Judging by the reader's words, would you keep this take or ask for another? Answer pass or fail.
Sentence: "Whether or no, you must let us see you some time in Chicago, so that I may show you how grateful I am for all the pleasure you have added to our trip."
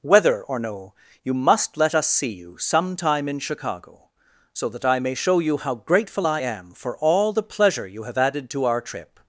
pass